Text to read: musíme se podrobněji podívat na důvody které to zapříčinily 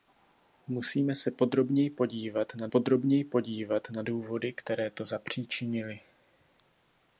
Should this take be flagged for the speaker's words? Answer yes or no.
yes